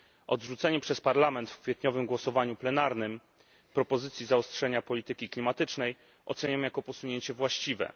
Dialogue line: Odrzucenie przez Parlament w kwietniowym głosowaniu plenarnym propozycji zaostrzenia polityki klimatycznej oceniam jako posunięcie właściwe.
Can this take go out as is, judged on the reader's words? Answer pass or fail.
pass